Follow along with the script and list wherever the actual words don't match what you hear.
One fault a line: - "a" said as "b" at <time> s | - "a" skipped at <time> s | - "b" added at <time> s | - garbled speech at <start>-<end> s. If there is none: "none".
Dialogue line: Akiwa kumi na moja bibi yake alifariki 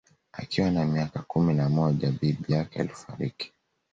- "na miaka" added at 0.7 s